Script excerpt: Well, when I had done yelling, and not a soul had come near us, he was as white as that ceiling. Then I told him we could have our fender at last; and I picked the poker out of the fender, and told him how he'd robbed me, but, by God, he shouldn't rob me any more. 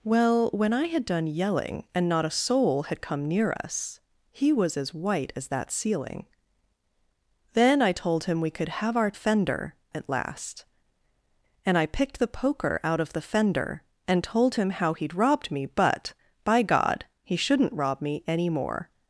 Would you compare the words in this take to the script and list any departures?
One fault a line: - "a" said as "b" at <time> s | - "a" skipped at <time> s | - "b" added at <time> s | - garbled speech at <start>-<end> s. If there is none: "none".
none